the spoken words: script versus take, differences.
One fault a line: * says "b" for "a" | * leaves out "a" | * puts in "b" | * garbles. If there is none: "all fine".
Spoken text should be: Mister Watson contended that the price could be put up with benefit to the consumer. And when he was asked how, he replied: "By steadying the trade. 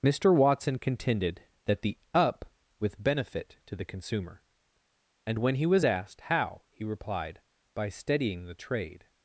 * leaves out "price could be put"